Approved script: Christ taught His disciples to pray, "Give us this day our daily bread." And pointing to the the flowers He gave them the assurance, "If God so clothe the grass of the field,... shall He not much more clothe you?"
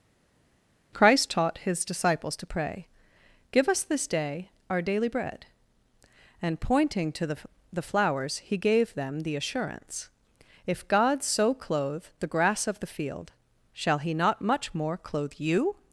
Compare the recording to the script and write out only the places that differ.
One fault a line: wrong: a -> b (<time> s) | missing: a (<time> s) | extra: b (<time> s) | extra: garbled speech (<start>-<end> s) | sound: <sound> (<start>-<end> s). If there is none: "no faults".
no faults